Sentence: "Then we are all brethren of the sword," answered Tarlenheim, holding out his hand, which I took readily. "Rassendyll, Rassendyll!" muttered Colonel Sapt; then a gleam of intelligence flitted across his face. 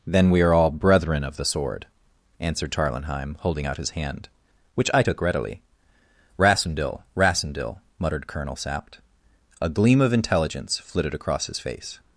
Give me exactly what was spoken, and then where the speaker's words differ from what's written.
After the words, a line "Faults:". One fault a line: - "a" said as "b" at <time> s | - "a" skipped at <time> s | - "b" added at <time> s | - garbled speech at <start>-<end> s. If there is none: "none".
"Then we are all brethren of the sword," answered Tarlenheim, holding out his hand, which I took readily. "Rassendyll, Rassendyll!" muttered Colonel Sapt; a gleam of intelligence flitted across his face.
Faults:
- "then" skipped at 9.0 s